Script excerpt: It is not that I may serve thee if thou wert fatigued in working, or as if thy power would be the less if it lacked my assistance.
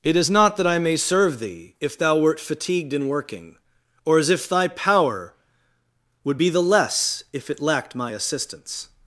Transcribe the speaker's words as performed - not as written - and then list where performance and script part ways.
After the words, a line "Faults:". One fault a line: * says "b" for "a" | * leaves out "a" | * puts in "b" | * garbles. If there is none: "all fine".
It is not that I may serve thee if thou wert fatigued in working, or as if thy power would be the less if it lacked my assistance.
Faults:
all fine